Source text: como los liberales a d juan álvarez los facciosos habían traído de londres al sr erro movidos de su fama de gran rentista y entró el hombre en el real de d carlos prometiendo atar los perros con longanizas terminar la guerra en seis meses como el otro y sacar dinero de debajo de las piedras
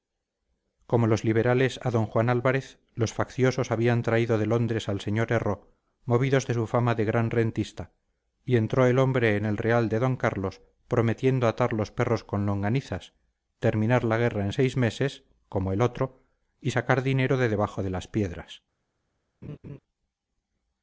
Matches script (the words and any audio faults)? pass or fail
fail